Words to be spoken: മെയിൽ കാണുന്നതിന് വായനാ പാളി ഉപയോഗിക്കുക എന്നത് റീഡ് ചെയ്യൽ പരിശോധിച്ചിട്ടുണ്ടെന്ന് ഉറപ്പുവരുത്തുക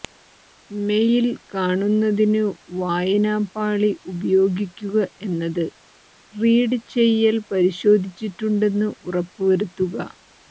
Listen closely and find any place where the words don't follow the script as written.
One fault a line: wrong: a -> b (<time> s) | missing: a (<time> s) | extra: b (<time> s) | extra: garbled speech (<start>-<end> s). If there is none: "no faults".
no faults